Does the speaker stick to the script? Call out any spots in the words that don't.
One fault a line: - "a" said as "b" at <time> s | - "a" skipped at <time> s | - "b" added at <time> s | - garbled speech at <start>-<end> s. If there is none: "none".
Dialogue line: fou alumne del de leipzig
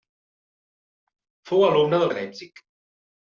none